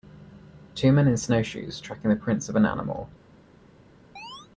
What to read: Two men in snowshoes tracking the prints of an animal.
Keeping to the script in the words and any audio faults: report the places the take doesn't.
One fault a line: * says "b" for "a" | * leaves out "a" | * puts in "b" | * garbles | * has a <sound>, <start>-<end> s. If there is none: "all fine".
* has a chirp, 4.2-4.5 s